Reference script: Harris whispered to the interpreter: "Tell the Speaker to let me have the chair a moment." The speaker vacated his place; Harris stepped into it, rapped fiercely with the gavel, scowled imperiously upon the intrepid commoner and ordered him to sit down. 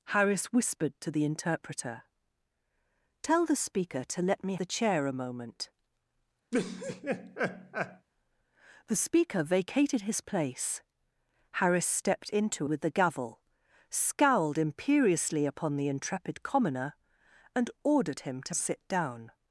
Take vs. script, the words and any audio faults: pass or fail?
fail